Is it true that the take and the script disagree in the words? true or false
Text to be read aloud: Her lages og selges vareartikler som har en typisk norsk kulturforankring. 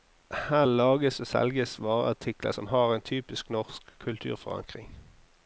false